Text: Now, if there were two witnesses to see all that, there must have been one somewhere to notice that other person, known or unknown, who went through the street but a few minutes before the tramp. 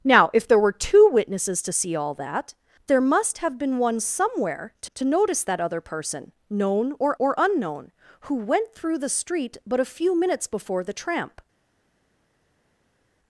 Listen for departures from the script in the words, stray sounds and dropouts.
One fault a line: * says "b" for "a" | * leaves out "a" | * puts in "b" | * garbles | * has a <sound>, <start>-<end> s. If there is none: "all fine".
* puts in "to"
* puts in "or"